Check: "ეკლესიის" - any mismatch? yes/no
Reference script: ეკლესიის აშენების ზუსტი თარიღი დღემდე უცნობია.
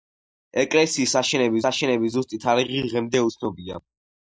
no